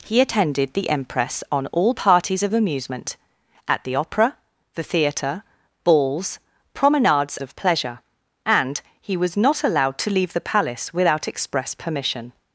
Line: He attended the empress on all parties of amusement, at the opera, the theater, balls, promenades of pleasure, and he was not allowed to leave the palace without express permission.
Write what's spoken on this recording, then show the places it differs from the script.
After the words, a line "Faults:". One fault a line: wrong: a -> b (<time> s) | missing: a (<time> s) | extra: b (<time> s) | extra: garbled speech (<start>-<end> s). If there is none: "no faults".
He attended the empress on all parties of amusement, at the opera, the theater, balls, promenades of pleasure, and he was not allowed to leave the palace without express permission.
Faults:
no faults